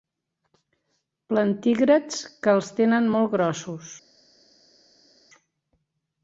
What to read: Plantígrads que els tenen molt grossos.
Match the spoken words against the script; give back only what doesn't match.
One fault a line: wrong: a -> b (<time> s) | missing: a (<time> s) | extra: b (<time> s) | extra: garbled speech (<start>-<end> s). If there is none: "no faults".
no faults